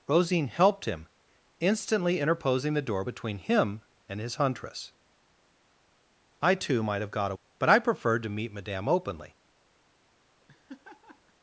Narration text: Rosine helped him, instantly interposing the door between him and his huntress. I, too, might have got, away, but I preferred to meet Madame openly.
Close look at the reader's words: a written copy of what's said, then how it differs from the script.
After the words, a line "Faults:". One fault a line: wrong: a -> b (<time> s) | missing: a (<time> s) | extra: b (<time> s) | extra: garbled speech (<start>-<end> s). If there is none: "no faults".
Rosine helped him, instantly interposing the door between him and his huntress. I, too, might have got, away, but I preferred to meet Madame openly.
Faults:
no faults